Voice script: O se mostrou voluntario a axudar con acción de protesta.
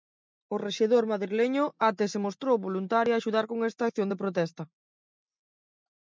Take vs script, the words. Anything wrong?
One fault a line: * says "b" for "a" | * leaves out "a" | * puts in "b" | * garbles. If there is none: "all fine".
* puts in "rexedor madrileño até"
* puts in "esta"